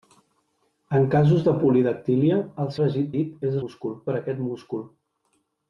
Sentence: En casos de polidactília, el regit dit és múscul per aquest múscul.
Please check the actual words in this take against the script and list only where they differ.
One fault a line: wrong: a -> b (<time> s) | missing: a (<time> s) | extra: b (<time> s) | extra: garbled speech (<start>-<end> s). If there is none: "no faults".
no faults